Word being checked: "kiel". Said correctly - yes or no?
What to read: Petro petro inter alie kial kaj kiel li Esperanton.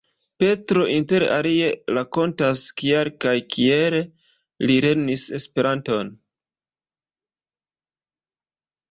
yes